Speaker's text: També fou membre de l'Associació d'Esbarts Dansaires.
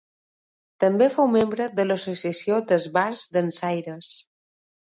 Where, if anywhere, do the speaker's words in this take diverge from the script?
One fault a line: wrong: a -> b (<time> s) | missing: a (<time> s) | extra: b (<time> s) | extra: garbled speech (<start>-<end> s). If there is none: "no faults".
no faults